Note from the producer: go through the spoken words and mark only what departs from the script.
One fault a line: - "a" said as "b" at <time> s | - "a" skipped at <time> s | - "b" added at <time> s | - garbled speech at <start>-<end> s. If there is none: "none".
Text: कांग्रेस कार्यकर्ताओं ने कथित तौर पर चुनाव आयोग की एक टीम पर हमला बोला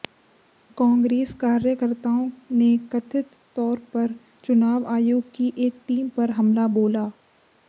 none